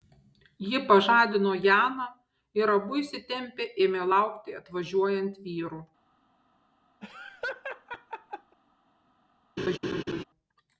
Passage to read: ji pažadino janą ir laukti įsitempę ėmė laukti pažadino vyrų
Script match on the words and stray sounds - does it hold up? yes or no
no